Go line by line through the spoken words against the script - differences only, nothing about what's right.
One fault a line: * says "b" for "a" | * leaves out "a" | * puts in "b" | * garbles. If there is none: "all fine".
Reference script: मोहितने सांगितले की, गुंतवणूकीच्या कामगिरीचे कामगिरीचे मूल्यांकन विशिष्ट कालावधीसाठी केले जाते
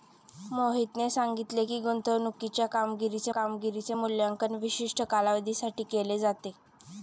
all fine